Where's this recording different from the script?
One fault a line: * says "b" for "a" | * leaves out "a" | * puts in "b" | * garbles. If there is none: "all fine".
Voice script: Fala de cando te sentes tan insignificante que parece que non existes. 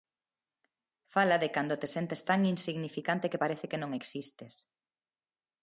all fine